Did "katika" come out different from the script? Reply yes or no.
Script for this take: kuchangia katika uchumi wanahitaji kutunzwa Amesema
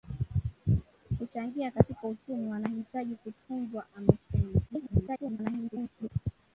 no